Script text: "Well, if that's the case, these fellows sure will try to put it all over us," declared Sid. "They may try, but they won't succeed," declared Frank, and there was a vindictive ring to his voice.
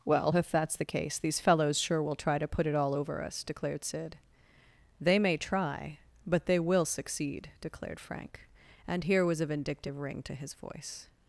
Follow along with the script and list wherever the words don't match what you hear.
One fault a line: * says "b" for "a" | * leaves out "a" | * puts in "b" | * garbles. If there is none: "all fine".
* says "will" for "won't"
* says "here" for "there"